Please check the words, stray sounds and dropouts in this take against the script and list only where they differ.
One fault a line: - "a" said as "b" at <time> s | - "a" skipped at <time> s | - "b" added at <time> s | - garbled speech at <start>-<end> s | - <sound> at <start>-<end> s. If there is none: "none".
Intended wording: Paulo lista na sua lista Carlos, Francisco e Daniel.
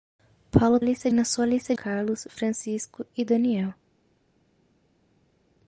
none